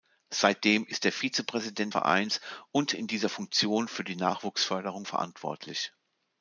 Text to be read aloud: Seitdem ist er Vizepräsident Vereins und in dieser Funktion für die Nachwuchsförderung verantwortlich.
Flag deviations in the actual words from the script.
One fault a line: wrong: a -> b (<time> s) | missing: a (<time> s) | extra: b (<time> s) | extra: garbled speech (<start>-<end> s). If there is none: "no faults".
no faults